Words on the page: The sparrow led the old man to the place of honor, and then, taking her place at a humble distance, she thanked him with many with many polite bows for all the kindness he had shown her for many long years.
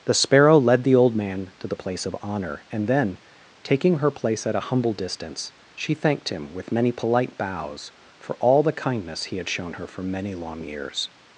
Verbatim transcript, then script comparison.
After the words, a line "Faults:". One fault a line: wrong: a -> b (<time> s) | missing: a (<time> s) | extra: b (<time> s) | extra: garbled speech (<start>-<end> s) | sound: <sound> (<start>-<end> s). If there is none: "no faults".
The sparrow led the old man to the place of honor, and then, taking her place at a humble distance, she thanked him with many polite bows for all the kindness he had shown her for many long years.
Faults:
missing: with many (6.9 s)